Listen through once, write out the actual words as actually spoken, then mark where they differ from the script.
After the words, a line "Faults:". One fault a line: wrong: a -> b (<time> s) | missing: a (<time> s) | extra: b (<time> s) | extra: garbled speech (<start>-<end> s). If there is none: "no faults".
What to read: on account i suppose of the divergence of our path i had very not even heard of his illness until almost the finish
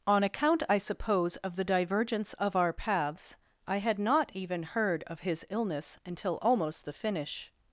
on account i suppose of the divergence of our paths i had not even heard of his illness until almost the finish
Faults:
wrong: path -> paths (2.7 s)
missing: very (4.0 s)